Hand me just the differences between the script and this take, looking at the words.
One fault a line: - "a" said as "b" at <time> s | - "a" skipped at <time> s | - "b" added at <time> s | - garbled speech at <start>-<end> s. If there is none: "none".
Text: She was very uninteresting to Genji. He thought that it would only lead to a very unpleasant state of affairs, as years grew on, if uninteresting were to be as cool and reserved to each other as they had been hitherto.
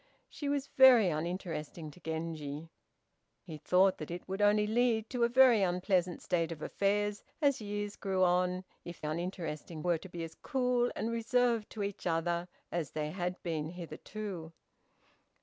none